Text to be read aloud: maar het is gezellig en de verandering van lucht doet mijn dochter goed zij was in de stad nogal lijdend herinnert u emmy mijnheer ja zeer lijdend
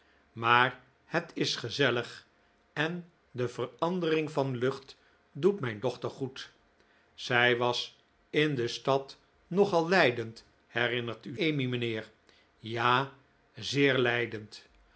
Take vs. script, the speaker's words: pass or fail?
pass